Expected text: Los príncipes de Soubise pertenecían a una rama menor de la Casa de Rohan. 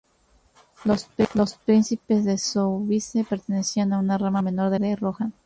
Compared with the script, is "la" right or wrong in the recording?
wrong